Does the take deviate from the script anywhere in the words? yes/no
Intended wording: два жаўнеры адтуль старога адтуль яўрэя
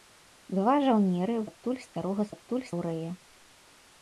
no